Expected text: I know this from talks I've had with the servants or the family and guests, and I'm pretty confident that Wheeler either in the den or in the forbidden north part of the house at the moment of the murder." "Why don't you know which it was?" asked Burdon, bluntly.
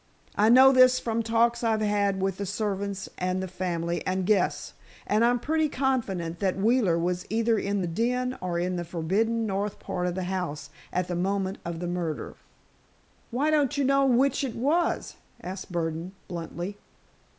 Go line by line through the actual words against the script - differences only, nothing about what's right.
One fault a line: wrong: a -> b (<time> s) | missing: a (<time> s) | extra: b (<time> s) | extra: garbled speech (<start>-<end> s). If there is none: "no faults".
wrong: or -> and (3.2 s)
extra: was (7.0 s)